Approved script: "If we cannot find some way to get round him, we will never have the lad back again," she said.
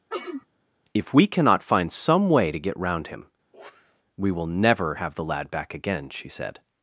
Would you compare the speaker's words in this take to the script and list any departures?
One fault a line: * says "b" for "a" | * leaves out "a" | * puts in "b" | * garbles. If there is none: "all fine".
all fine